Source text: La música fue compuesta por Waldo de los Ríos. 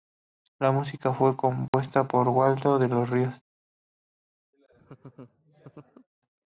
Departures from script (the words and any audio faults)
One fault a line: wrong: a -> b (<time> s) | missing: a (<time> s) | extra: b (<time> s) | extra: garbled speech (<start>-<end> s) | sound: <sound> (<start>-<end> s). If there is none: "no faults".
sound: dropout (1.7-1.7 s)
sound: laugh (4.5-6.1 s)